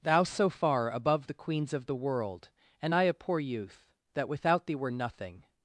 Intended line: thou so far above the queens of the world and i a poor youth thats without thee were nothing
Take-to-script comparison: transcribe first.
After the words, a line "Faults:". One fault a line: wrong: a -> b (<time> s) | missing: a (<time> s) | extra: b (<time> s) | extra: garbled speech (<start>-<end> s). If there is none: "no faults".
thou so far above the queens of the world and i a poor youth that without thee were nothing
Faults:
wrong: thats -> that (4.1 s)